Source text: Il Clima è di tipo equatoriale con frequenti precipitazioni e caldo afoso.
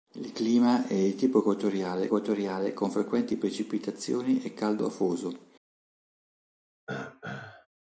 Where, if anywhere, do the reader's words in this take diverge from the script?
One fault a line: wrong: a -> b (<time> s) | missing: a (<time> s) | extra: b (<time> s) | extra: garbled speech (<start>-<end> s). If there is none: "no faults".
extra: equatoriale (2.1 s)